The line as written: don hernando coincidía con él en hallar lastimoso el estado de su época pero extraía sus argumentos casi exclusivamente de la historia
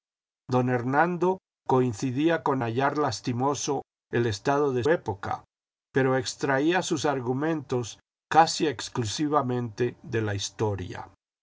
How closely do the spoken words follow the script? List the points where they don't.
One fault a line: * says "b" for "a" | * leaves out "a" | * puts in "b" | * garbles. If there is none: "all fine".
* leaves out "él en"
* leaves out "su"